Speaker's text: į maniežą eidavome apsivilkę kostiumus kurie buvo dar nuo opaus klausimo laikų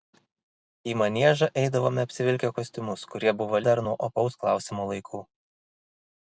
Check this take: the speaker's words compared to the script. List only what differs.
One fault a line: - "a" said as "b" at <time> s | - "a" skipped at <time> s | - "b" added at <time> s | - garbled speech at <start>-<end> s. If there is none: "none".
none